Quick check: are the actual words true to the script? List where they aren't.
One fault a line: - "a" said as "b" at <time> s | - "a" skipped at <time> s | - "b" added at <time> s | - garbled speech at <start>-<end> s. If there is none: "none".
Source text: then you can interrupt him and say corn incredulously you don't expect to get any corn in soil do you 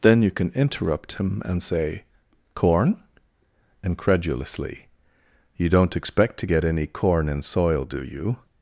none